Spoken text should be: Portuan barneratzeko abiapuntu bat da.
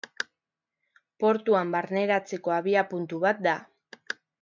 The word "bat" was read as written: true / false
true